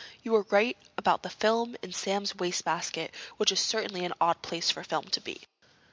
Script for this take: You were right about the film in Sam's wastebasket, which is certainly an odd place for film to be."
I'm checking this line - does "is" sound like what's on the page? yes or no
yes